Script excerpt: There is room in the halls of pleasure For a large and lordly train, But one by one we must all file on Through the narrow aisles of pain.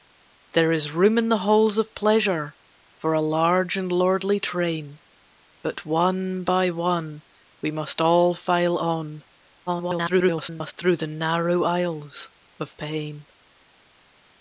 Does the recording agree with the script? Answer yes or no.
no